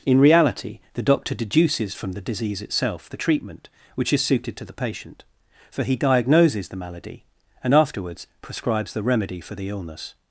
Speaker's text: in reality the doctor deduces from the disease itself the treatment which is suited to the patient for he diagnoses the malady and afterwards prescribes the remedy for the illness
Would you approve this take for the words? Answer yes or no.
yes